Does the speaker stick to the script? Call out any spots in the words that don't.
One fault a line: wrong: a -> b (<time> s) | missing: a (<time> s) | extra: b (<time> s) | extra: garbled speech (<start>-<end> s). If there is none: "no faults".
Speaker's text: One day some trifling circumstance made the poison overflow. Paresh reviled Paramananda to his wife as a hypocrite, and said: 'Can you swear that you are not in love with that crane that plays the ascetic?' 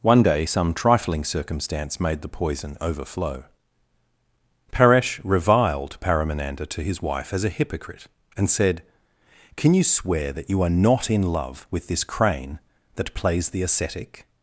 wrong: that -> this (11.9 s)